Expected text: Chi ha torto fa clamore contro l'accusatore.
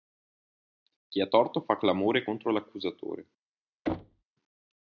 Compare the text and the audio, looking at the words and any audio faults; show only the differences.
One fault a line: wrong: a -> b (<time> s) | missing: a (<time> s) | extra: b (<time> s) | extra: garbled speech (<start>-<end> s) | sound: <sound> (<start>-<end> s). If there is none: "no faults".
sound: thud (3.9-4.2 s)